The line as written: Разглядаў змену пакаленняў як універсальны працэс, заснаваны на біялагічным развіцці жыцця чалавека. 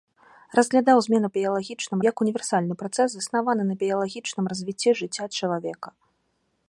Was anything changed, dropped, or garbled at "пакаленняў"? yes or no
yes